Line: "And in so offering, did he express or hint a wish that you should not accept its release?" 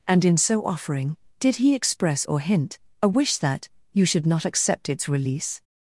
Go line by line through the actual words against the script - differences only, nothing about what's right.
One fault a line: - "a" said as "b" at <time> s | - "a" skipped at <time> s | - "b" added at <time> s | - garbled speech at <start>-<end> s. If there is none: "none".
none